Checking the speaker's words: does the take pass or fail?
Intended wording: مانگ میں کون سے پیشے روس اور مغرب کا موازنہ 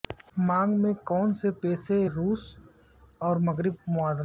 fail